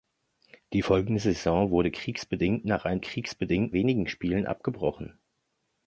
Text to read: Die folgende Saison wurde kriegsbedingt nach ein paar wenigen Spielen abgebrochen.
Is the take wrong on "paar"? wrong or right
wrong